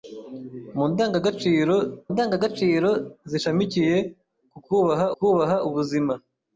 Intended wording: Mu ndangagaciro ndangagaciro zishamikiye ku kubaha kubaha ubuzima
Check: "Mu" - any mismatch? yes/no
no